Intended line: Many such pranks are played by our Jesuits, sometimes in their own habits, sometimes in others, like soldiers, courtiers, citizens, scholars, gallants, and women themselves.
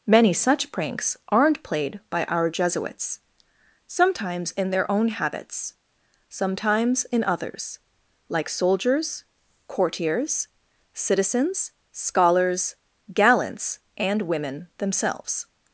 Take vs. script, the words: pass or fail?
fail